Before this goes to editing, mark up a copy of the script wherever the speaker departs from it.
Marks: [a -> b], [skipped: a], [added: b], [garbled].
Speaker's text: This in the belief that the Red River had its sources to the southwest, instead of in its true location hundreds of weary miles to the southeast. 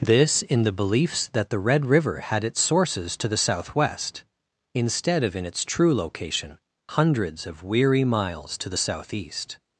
This in the [belief -> beliefs] that the Red River had its sources to the southwest, instead of in its true location hundreds of weary miles to the southeast.